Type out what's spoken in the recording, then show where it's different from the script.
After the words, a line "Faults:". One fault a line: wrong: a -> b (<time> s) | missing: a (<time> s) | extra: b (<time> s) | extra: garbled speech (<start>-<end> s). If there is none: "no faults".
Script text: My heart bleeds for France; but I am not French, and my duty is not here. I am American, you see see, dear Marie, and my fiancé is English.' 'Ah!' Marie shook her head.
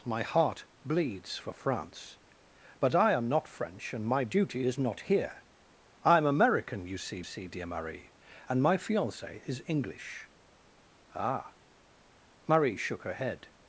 My heart bleeds for France; but I am not French, and my duty is not here. I am American, you see see, dear Marie, and my fiancé is English.' 'Ah!' Marie shook her head.
Faults:
no faults